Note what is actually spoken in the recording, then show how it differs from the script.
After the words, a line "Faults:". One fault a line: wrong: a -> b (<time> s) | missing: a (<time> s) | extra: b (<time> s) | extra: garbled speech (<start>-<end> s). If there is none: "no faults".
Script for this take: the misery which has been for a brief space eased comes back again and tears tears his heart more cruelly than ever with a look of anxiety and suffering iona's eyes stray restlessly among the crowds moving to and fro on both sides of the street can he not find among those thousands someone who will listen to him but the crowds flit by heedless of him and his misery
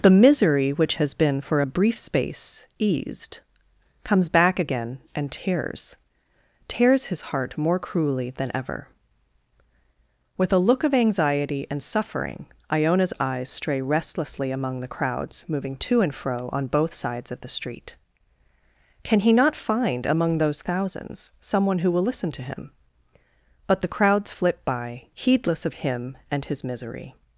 the misery which has been for a brief space eased comes back again and tears tears his heart more cruelly than ever with a look of anxiety and suffering iona's eyes stray restlessly among the crowds moving to and fro on both sides of the street can he not find among those thousands someone who will listen to him but the crowds flit by heedless of him and his misery
Faults:
no faults